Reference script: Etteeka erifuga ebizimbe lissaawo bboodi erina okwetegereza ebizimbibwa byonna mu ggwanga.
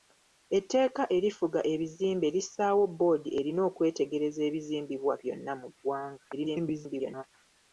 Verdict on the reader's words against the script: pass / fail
fail